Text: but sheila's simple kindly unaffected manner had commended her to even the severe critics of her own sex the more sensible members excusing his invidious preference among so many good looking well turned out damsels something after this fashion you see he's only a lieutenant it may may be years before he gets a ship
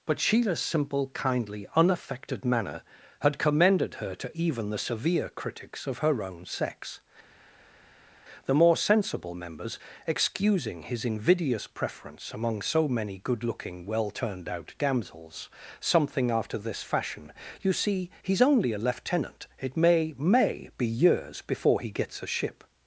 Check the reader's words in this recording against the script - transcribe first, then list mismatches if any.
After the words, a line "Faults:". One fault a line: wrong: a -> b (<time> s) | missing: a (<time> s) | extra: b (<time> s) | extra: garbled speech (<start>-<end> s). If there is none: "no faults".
but sheila's simple kindly unaffected manner had commended her to even the severe critics of her own sex the more sensible members excusing his invidious preference among so many good looking well turned out damsels something after this fashion you see he's only a lieutenant it may may be years before he gets a ship
Faults:
no faults